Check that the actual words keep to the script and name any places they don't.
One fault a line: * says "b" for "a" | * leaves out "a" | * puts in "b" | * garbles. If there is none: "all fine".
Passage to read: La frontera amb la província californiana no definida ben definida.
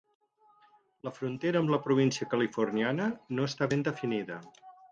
* says "està" for "definida"